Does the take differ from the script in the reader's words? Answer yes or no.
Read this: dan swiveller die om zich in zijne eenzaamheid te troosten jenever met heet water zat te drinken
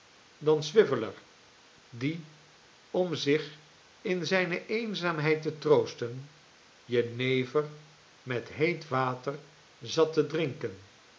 no